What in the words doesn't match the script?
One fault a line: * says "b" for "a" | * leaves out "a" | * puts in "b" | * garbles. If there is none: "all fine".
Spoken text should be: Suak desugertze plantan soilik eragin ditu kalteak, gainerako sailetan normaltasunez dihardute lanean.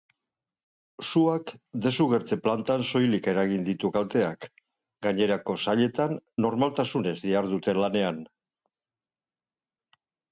all fine